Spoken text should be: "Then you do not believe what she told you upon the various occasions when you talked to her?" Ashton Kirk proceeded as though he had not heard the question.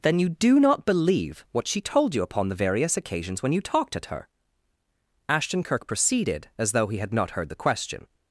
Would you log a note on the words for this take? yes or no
yes